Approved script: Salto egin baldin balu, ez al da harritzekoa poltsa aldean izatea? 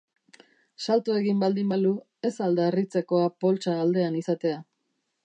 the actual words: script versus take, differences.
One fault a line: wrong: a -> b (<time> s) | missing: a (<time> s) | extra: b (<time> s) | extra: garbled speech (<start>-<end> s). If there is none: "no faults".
no faults